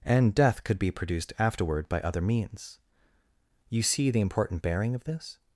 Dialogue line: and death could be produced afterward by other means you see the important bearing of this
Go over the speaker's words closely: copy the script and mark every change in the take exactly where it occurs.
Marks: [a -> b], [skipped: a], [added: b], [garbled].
and death could be produced afterward by other means you see the important bearing of this